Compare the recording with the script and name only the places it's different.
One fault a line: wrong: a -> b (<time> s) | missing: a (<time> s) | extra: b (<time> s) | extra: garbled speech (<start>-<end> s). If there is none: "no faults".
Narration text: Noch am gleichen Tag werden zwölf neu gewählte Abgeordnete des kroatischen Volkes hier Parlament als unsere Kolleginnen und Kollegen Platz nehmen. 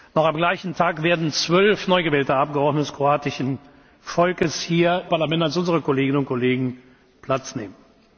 no faults